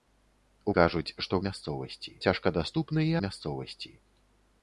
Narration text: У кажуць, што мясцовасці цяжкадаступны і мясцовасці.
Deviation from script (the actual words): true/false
false